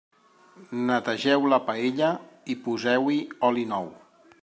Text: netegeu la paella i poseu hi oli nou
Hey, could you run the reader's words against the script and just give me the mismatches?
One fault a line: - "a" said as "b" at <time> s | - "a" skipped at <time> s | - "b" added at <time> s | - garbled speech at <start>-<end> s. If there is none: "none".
none